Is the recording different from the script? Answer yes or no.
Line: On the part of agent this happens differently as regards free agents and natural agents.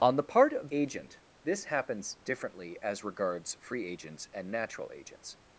no